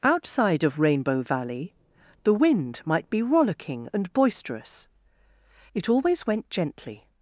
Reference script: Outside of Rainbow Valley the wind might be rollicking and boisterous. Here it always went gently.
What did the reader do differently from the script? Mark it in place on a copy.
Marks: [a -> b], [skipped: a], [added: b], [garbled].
Outside of Rainbow Valley the wind might be rollicking and boisterous. [skipped: Here] it always went gently.